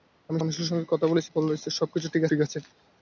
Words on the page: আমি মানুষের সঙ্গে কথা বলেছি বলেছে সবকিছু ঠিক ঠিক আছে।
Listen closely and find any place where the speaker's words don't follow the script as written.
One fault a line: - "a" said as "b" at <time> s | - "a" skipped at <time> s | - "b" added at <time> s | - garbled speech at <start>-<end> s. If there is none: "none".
none